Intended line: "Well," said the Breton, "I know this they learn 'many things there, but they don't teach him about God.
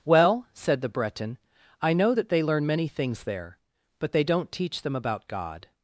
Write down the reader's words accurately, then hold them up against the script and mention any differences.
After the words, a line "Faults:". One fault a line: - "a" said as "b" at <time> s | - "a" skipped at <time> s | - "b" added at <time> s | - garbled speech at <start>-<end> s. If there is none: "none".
"Well," said the Breton, "I know that they learn 'many things there, but they don't teach them about God.
Faults:
- "this" said as "that" at 2.1 s
- "him" said as "them" at 4.8 s